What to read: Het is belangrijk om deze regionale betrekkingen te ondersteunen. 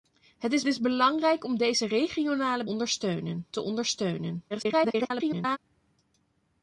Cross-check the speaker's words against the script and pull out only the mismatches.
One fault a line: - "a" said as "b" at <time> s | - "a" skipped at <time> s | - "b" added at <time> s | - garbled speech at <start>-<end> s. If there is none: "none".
- "is" added at 0.7 s
- "betrekkingen" said as "ondersteunen" at 2.6 s
- garbled speech at 4.5-5.6 s